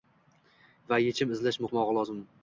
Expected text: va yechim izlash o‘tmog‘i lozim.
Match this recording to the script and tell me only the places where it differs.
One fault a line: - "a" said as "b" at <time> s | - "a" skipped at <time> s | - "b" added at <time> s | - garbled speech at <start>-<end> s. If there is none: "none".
none